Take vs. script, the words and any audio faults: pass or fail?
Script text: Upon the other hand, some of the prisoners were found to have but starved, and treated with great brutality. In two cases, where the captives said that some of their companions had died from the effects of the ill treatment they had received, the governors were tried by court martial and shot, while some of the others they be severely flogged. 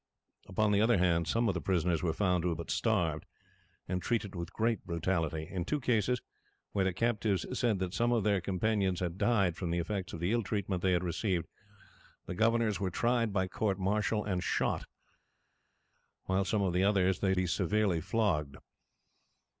pass